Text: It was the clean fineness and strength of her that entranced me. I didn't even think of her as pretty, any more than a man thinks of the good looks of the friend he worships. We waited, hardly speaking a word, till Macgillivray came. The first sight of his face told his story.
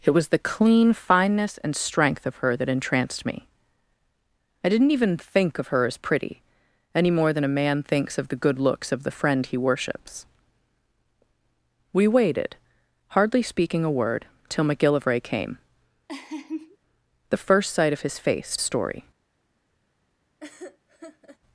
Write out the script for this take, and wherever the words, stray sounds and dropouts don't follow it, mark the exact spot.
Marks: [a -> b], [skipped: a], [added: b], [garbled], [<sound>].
It was the clean fineness and strength of her that entranced me. I didn't even think of her as pretty, any more than a man thinks of the good looks of the friend he worships. We waited, hardly speaking a word, till Macgillivray came. [laugh] The first sight of his face [skipped: told his] story. [laugh]